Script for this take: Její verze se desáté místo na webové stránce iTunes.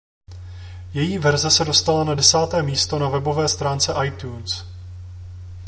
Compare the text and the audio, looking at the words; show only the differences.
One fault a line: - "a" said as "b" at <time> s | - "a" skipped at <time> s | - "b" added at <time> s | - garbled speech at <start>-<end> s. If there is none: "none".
- "dostala na" added at 1.6 s